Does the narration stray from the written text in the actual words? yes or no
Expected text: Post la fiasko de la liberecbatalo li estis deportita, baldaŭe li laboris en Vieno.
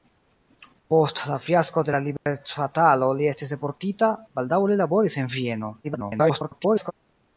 yes